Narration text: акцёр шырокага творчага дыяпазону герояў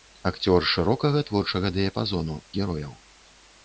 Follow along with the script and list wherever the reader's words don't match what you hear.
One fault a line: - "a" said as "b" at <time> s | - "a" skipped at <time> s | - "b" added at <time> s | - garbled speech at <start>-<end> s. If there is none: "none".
none